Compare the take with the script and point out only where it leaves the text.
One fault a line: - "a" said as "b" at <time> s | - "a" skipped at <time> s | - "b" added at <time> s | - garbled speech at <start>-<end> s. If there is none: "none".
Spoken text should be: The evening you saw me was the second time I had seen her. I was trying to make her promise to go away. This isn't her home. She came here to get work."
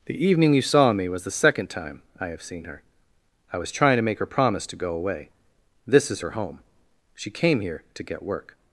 - "had" said as "have" at 2.3 s
- "isn't" said as "is" at 6.1 s